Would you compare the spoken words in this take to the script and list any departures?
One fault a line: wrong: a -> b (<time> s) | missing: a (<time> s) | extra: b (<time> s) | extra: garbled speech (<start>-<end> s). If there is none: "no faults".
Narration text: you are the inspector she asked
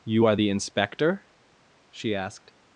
no faults